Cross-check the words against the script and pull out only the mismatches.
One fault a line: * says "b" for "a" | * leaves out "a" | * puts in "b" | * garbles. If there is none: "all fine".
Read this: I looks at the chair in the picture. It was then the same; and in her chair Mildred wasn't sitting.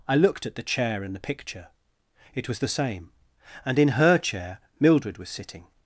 * says "looked" for "looks"
* leaves out "then"
* says "was" for "wasn't"